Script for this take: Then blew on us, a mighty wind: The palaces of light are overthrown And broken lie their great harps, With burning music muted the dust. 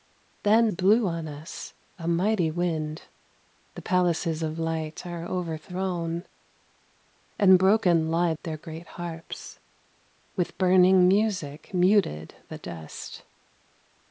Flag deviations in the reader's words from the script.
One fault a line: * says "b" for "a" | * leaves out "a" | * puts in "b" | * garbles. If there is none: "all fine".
all fine